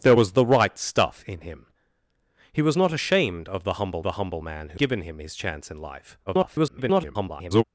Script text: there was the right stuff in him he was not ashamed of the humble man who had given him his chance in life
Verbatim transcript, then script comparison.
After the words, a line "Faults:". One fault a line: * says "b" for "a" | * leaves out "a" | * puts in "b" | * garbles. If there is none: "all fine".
there was the right stuff in him he was not ashamed of the humble the humble man who given him his chance in life [garbled]
Faults:
* puts in "the humble"
* leaves out "had"
* garbles